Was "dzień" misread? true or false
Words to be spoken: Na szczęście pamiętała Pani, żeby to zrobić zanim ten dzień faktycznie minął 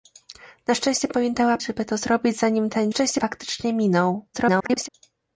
true